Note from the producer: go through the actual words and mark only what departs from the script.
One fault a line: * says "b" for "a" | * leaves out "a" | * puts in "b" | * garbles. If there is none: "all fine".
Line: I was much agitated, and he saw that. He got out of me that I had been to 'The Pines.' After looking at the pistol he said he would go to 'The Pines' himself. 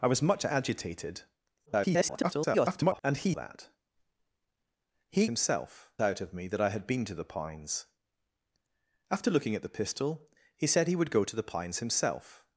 * garbles
* leaves out "saw"
* says "himself" for "got"